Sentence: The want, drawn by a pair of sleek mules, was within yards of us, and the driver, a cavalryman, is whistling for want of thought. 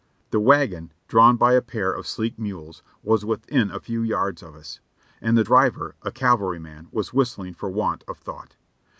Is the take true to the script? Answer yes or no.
no